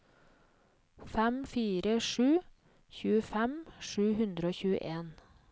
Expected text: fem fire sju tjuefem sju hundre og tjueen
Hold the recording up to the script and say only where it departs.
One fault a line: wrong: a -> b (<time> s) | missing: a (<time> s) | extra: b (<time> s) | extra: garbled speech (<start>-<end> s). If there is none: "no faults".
no faults